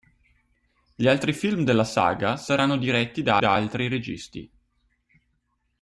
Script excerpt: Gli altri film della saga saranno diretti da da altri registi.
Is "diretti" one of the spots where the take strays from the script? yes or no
no